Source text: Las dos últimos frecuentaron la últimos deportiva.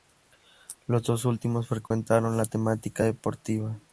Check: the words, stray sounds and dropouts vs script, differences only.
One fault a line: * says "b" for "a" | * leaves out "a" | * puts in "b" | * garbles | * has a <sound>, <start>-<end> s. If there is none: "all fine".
* says "Los" for "Las"
* has a dropout, 1.9-1.9 s
* says "temática" for "últimos"